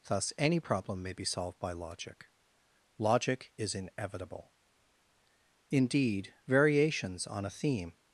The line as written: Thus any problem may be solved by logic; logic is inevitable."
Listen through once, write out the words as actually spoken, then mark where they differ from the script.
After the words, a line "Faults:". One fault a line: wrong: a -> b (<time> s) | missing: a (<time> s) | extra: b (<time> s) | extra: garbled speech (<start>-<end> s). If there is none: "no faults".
Thus any problem may be solved by logic; logic is inevitable." Indeed, variations on a theme
Faults:
extra: Indeed variations on a theme (5.7 s)